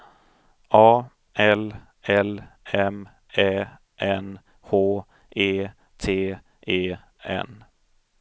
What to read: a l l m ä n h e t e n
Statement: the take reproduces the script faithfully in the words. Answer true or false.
true